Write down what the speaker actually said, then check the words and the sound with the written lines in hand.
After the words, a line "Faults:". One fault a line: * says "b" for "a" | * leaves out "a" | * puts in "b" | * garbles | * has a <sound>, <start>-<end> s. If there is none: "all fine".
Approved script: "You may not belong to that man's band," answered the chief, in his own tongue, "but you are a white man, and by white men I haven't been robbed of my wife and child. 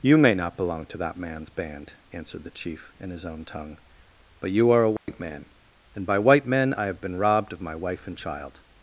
"You may not belong to that man's band," answered the chief, in his own tongue, "but you are a white man, and by white men I have been robbed of my wife and child.
Faults:
* has a dropout, 5.0-5.1 s
* says "have" for "haven't"